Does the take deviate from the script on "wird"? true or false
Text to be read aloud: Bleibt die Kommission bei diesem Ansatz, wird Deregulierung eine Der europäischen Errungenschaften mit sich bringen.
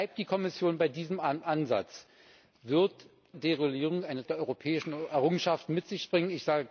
false